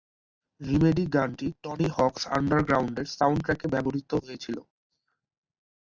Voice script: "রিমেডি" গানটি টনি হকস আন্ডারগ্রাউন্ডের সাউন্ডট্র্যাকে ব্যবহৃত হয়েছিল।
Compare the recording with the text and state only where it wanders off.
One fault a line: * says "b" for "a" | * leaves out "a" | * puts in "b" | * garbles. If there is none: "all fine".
all fine